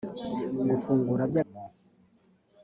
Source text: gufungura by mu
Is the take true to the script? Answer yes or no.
yes